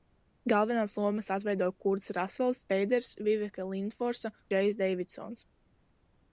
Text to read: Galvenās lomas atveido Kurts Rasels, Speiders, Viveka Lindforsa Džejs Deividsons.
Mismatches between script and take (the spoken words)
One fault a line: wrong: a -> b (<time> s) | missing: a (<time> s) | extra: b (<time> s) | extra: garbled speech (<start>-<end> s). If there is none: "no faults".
no faults